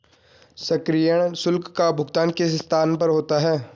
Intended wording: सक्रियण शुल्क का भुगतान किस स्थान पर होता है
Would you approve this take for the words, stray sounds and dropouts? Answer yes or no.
yes